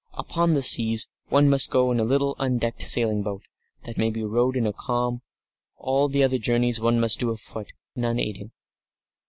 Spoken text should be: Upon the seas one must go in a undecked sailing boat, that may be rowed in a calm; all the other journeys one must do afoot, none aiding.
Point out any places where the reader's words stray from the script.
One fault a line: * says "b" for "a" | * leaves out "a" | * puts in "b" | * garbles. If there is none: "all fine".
* puts in "little"